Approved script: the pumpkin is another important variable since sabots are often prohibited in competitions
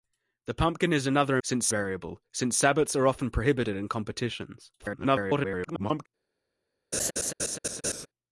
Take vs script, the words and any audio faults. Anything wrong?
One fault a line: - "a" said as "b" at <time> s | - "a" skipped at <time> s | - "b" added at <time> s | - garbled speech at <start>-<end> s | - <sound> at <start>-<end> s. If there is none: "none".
- "important" said as "since" at 1.4 s
- garbled speech at 4.8-6.1 s
- laugh at 6.9-8.1 s